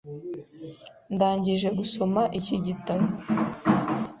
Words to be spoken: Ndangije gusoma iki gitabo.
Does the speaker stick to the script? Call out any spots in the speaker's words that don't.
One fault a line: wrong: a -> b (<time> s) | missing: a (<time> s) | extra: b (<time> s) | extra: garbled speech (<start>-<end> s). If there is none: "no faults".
no faults